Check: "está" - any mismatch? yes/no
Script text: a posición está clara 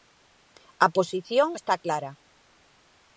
no